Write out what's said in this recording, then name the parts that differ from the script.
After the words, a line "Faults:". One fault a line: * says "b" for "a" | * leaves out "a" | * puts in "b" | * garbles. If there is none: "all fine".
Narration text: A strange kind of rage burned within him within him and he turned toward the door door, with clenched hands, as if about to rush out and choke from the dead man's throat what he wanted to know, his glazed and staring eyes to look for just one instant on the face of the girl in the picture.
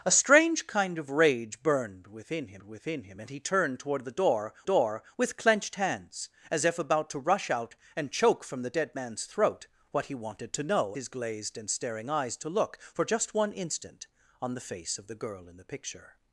A strange kind of rage burned within him within him and he turned toward the door door, with clenched hands, as if about to rush out and choke from the dead man's throat what he wanted to know, his glazed and staring eyes to look for just one instant on the face of the girl in the picture.
Faults:
all fine